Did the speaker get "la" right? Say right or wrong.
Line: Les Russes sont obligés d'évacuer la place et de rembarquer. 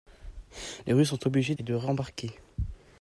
wrong